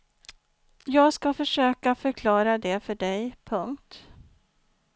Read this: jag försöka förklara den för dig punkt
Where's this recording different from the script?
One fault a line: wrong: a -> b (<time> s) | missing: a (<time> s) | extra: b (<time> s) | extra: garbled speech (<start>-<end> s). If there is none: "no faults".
extra: ska (1.1 s)
wrong: den -> det (2.6 s)